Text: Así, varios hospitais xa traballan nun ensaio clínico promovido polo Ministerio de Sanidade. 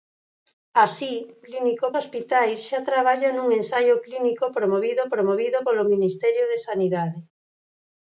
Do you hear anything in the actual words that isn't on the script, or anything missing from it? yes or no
yes